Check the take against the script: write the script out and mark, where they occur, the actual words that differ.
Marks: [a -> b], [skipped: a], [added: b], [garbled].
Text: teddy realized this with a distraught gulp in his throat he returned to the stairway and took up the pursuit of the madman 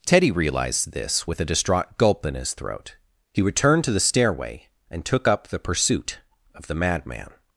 teddy realized this with a distraught gulp in his throat he returned to the stairway and took up the pursuit of the madman